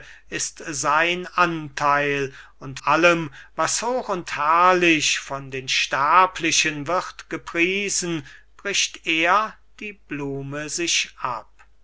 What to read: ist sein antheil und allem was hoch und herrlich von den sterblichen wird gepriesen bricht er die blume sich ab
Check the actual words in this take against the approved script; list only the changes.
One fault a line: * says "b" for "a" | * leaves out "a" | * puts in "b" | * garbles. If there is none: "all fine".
all fine